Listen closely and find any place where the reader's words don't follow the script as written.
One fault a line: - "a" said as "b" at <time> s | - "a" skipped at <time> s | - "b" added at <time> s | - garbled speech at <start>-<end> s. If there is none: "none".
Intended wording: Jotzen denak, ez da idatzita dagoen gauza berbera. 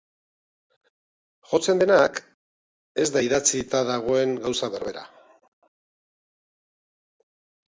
none